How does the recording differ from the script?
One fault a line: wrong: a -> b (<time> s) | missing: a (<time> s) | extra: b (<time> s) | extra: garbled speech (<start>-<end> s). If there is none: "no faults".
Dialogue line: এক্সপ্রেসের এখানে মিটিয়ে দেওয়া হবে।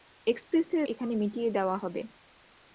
no faults